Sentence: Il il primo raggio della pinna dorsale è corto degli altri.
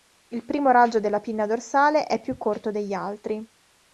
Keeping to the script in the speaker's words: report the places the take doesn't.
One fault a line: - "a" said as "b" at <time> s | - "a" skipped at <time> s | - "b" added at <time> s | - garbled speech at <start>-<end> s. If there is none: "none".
- "il" skipped at 0.5 s
- "più" added at 2.2 s